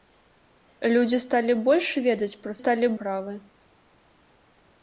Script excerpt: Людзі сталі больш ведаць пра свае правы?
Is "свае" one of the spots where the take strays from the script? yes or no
yes